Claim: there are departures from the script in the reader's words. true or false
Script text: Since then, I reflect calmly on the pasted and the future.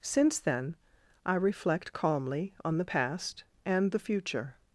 true